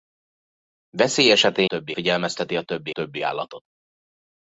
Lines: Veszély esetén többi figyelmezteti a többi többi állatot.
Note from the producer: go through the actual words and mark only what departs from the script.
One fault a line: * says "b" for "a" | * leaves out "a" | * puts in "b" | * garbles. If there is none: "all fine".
all fine